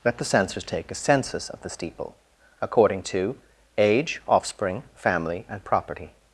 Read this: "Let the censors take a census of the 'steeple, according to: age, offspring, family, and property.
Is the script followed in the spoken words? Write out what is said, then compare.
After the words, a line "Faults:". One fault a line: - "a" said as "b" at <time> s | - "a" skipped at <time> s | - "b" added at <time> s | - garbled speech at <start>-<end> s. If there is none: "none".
"Let the censors take a census of the 'steeple, according to: age, offspring, family, and property.
Faults:
none